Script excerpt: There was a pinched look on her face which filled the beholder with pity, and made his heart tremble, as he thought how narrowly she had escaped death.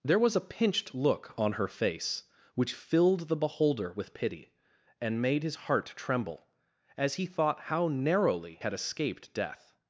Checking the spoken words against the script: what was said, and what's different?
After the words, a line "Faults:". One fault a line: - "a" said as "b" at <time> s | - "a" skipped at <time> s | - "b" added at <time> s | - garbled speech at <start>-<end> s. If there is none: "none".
There was a pinched look on her face which filled the beholder with pity, and made his heart tremble, as he thought how narrowly had escaped death.
Faults:
- "she" skipped at 8.6 s